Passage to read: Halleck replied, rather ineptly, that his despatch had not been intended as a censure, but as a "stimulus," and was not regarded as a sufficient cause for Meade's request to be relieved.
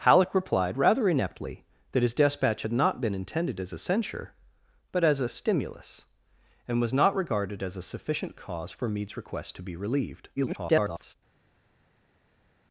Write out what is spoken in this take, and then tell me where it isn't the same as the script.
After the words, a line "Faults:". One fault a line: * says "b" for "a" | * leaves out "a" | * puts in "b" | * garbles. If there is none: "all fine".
Halleck replied, rather ineptly, that his despatch had not been intended as a censure, but as a "stimulus," and was not regarded as a sufficient cause for Meade's request to be relieved. [garbled]
Faults:
* garbles